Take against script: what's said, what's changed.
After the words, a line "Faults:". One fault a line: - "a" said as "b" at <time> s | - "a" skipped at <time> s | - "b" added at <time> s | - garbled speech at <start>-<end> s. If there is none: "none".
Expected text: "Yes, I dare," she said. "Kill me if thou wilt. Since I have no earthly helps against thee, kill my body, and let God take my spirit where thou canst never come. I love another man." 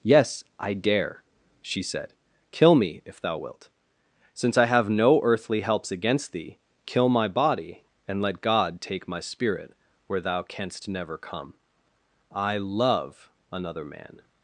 "Yes, I dare," she said. "Kill me if thou wilt. Since I have no earthly helps against thee, kill my body, and let God take my spirit where thou canst never come. I love another man."
Faults:
none